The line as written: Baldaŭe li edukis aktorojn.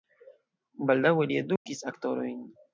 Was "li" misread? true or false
false